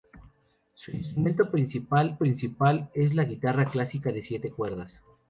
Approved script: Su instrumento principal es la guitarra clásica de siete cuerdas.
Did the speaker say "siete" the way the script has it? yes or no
yes